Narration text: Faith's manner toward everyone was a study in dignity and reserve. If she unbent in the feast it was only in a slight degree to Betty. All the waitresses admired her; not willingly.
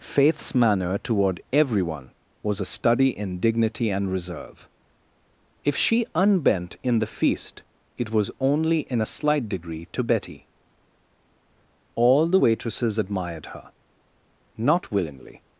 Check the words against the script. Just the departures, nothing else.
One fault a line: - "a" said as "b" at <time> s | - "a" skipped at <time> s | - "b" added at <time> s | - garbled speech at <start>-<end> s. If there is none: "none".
none